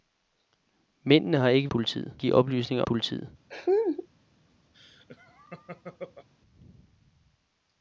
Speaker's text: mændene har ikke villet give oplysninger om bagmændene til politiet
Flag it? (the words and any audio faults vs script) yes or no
yes